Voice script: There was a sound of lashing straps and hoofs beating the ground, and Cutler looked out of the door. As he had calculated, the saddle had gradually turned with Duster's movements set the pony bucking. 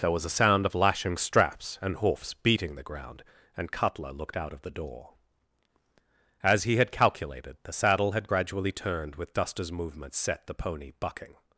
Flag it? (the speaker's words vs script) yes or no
no